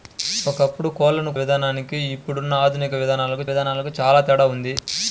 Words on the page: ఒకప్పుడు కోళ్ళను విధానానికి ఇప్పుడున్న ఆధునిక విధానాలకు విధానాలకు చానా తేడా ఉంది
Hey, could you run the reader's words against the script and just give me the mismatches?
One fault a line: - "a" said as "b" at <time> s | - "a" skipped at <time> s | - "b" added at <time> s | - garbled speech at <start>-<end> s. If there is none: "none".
none